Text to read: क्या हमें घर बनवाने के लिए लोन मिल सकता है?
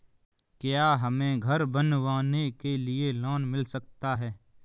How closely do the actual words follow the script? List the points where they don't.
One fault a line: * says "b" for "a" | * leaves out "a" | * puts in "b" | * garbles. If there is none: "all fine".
all fine